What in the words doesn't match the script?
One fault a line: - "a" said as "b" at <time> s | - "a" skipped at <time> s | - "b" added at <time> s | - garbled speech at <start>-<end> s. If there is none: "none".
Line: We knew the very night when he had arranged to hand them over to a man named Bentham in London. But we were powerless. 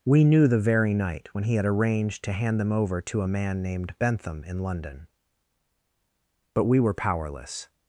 none